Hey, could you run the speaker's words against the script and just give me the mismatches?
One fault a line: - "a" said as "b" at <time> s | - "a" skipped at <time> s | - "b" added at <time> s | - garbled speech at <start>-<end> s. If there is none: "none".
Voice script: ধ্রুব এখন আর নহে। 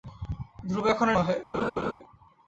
none